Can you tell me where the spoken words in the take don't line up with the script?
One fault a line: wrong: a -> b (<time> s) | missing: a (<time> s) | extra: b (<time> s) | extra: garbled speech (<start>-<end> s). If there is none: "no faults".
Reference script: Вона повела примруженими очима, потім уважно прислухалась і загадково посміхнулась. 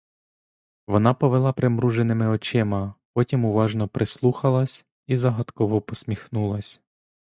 no faults